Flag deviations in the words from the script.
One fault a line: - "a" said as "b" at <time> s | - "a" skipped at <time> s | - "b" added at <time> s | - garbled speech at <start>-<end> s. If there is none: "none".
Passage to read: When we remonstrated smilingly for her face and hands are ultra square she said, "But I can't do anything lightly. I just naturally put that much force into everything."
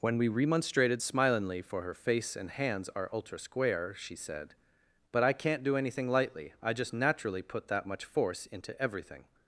none